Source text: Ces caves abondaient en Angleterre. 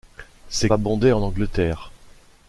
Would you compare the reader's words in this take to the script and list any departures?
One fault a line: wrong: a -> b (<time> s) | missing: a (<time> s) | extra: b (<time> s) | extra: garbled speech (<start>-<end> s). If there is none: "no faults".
missing: caves (0.7 s)